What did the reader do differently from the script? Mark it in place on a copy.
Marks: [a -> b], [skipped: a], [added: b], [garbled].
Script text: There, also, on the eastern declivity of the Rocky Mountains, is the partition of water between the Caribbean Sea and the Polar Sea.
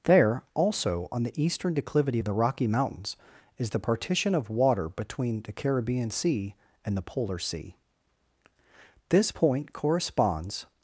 There, also, on the eastern declivity of the Rocky Mountains, is the partition of water between the Caribbean Sea and the Polar Sea. [added: This point corresponds]